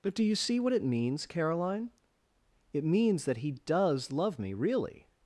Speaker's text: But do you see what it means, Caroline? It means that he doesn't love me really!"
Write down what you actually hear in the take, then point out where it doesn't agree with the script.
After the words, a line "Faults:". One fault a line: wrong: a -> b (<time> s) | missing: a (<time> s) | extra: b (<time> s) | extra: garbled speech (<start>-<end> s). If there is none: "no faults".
But do you see what it means, Caroline? It means that he does love me really!"
Faults:
wrong: doesn't -> does (3.5 s)